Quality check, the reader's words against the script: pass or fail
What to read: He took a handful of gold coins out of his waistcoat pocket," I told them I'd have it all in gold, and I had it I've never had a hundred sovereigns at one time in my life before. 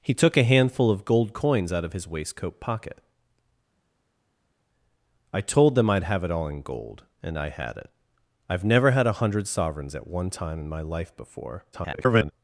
fail